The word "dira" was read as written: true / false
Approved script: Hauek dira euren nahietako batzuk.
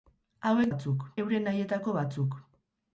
false